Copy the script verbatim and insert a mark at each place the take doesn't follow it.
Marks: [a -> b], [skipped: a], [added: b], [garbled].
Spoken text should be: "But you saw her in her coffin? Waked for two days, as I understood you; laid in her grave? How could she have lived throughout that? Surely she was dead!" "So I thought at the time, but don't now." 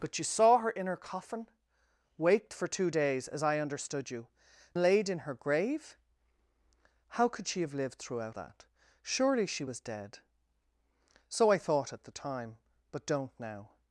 "But you saw her in her coffin? Waked for two days, as I understood you; laid in her grave? How could she have lived throughout that? Surely she was dead!" "So I thought at the time, but don't now."